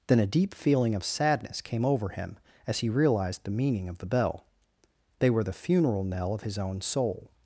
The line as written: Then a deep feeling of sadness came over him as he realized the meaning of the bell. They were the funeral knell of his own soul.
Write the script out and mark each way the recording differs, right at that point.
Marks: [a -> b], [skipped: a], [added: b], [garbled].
Then a deep feeling of sadness came over him as he realized the meaning of the bell. They were the funeral knell of his own soul.